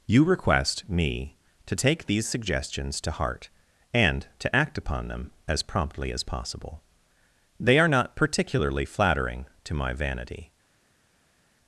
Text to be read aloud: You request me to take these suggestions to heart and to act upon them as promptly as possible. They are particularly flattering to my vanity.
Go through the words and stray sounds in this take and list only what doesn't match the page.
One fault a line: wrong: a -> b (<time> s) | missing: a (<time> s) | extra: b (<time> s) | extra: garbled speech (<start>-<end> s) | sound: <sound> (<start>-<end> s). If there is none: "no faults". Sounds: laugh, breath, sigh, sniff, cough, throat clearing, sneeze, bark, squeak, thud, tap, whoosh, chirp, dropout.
extra: not (7.9 s)